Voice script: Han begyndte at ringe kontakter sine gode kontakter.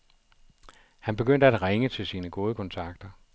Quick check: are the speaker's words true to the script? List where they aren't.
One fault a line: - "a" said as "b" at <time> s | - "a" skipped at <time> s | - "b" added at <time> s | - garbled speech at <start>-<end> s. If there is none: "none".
- "kontakter" said as "til" at 1.9 s